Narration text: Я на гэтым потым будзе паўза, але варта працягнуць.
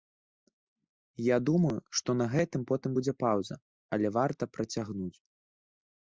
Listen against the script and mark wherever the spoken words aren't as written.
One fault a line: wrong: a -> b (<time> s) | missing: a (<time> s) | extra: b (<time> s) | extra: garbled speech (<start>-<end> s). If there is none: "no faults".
extra: думаю што (1.5 s)